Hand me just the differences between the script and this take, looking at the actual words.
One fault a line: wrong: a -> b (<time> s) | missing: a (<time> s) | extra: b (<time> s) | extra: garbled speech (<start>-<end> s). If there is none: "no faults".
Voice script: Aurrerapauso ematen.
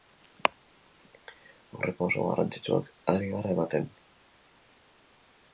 extra: garrantzitsuak ari gara (2.3 s)